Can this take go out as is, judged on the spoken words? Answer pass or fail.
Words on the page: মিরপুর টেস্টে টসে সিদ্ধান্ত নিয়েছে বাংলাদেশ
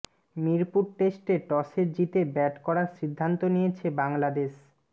fail